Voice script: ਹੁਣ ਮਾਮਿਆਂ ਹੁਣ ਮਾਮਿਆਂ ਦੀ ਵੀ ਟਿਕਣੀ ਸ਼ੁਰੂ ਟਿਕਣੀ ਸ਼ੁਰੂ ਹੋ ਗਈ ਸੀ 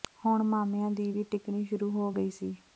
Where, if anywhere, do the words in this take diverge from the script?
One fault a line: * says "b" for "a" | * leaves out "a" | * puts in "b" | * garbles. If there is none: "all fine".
* leaves out "ਹੁਣ ਮਾਮਿਆਂ"
* leaves out "ਟਿਕਣੀ ਸ਼ੁਰੂ"